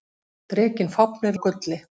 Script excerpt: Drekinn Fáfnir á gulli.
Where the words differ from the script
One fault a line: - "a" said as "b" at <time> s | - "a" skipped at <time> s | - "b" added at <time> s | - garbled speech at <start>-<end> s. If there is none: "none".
none